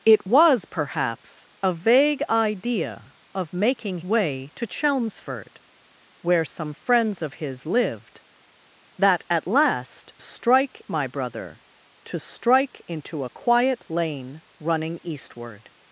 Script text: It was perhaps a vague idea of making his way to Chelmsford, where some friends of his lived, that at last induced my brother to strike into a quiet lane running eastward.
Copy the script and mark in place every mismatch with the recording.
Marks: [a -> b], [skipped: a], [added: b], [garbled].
It was perhaps a vague idea of making [skipped: his] way to Chelmsford, where some friends of his lived, that at last [induced -> strike] my brother to strike into a quiet lane running eastward.